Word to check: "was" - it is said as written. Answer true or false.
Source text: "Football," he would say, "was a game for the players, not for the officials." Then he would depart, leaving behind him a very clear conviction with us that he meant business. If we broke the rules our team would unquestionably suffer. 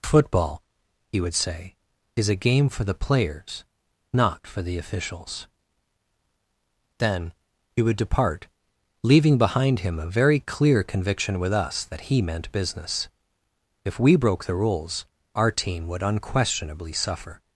false